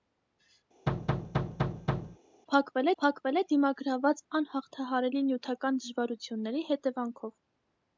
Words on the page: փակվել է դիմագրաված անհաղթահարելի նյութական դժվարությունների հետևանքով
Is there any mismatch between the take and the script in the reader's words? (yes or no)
yes